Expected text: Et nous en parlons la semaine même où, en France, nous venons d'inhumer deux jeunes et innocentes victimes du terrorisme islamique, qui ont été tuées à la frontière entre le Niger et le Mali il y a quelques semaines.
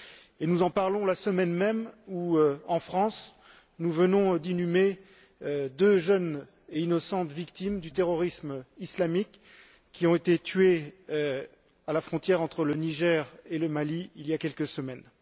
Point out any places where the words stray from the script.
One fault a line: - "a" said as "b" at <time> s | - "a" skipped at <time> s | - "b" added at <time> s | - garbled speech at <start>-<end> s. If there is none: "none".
none